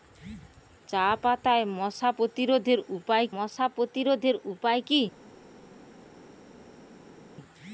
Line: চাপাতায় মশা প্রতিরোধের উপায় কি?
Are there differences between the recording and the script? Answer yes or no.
yes